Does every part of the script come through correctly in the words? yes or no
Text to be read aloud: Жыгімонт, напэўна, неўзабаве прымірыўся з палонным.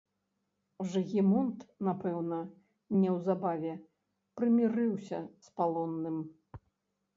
yes